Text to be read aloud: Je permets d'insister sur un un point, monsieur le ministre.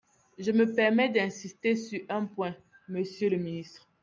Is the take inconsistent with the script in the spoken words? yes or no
yes